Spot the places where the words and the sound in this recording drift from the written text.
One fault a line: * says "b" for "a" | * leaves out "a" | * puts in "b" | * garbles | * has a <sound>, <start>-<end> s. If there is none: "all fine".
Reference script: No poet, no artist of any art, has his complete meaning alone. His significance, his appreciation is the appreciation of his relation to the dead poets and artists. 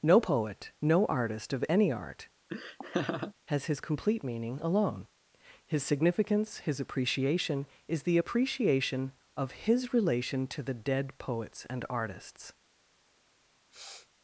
* has a laugh, 2.5-3.3 s
* has a sniff, 13.7-14.1 s